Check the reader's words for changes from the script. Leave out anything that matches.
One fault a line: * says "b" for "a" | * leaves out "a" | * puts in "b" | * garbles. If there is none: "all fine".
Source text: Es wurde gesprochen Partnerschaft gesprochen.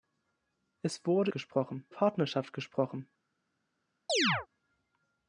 all fine